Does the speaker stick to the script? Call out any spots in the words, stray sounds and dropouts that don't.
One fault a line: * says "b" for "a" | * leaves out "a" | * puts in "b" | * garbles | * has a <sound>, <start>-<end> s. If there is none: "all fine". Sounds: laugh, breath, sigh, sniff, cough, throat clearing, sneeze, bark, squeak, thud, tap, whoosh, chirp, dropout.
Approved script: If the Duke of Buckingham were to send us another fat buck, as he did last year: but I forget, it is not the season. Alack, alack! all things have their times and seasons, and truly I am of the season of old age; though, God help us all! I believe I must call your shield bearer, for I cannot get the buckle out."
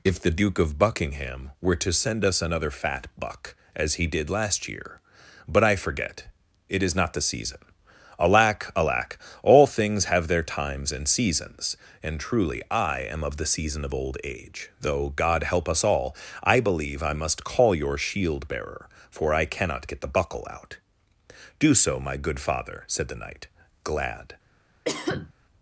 * puts in "Do so my good father said the knight glad"
* has a cough, 24.8-25.3 s